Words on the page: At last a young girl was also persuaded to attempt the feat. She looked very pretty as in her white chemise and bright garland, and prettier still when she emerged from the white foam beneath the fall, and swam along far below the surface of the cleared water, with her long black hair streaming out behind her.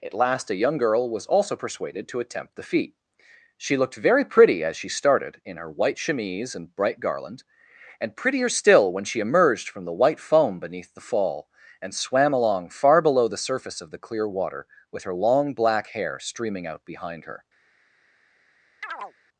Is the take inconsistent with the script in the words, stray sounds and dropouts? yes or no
yes